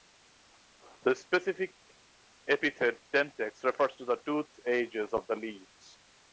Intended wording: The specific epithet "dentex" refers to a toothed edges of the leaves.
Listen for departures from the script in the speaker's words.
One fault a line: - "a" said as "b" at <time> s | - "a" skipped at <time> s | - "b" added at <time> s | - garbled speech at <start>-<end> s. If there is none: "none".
- "a" said as "the" at 4.0 s